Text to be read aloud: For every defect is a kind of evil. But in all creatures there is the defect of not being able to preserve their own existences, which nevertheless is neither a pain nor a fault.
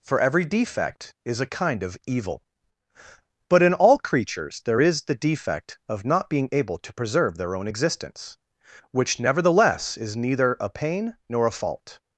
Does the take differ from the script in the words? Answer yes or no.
yes